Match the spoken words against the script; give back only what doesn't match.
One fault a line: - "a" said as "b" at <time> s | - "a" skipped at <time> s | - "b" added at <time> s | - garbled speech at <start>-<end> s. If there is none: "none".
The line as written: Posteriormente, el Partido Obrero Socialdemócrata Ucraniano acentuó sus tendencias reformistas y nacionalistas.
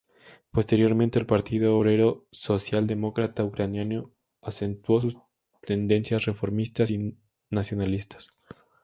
none